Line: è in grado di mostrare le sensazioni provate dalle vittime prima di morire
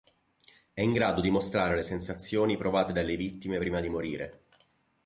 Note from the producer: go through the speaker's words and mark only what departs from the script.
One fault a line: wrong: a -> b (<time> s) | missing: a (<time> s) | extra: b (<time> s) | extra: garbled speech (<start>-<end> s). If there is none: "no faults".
no faults